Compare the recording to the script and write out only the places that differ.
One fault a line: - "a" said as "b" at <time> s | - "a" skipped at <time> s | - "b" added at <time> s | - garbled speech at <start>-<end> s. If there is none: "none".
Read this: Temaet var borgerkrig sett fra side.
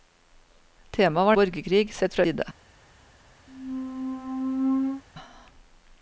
none